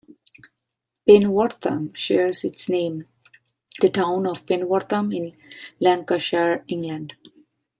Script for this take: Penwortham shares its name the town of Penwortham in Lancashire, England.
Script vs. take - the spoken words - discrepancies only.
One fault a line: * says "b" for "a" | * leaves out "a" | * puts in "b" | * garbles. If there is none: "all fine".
all fine